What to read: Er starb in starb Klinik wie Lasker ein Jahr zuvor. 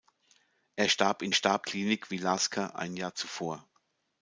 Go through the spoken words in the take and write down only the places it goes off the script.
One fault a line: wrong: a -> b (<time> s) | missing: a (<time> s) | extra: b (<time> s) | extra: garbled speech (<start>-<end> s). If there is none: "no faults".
no faults